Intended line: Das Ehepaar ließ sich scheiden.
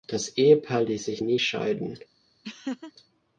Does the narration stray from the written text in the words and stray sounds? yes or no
yes